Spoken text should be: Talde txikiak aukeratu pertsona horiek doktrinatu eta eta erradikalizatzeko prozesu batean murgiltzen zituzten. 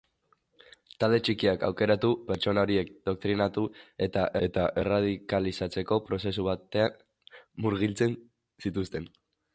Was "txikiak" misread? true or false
false